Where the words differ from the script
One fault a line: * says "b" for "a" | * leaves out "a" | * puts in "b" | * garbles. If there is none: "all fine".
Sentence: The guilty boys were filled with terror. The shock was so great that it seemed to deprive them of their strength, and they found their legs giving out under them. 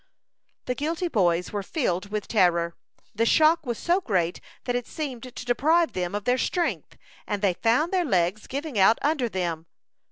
all fine